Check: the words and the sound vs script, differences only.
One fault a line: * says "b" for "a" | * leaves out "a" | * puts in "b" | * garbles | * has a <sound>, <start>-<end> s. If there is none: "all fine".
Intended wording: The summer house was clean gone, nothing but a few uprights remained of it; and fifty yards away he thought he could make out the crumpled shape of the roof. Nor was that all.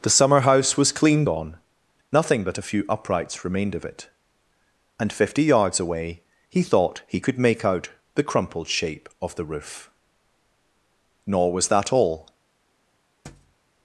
* has a thud, 13.2-13.6 s